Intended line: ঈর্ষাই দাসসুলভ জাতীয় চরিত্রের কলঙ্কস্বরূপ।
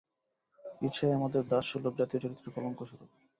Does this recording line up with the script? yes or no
no